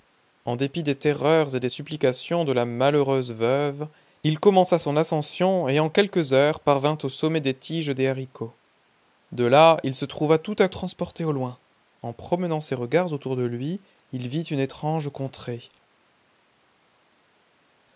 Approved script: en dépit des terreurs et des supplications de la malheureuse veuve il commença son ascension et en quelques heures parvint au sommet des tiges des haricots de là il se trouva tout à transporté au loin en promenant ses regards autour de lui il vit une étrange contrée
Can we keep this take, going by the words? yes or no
yes